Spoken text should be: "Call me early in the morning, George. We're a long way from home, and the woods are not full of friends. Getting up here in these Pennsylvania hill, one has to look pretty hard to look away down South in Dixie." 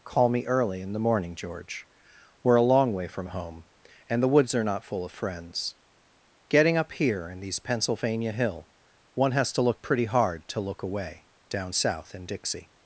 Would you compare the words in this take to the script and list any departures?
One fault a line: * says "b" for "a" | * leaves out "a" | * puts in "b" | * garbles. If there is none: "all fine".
all fine